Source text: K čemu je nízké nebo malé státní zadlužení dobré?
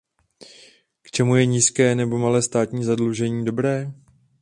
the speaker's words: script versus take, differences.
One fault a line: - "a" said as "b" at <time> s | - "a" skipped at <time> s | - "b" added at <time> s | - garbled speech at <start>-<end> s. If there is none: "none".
none